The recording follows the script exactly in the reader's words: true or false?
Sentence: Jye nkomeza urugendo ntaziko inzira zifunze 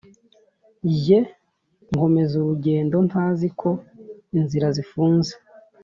true